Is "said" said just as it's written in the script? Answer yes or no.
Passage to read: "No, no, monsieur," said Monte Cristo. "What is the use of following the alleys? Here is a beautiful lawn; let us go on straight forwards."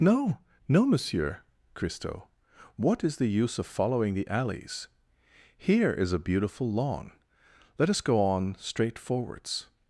no